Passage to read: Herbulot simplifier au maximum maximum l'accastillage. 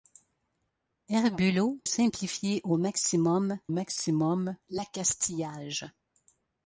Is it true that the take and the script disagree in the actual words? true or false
false